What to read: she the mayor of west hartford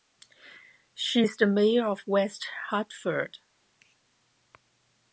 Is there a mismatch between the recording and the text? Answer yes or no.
yes